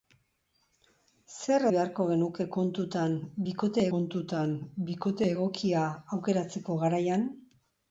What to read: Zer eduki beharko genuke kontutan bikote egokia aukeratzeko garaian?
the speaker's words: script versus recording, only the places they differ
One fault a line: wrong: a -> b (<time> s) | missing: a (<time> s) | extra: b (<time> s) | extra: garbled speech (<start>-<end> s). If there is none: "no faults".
missing: eduki (1.6 s)
extra: kontutan bikote (3.9 s)